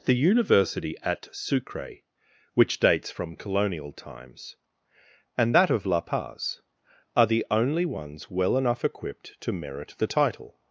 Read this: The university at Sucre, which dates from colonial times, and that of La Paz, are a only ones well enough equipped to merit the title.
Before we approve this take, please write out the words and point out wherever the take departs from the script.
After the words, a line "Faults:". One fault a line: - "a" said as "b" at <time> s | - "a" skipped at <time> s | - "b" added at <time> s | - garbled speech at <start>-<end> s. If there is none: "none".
The university at Sucre, which dates from colonial times, and that of La Paz, are the only ones well enough equipped to merit the title.
Faults:
- "a" said as "the" at 7.3 s